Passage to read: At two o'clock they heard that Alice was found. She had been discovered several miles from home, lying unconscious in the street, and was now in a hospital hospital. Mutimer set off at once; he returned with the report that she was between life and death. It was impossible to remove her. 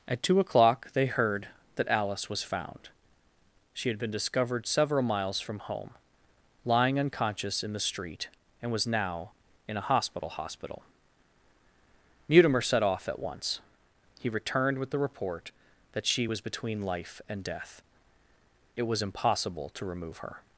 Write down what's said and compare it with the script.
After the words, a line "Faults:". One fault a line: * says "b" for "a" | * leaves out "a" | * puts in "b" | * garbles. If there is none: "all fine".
At two o'clock they heard that Alice was found. She had been discovered several miles from home, lying unconscious in the street, and was now in a hospital hospital. Mutimer set off at once; he returned with the report that she was between life and death. It was impossible to remove her.
Faults:
all fine